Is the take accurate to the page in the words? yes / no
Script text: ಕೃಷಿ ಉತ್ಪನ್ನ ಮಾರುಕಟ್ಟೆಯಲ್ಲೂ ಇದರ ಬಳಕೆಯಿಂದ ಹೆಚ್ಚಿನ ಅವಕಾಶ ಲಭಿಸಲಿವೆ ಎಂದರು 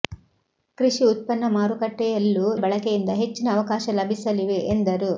no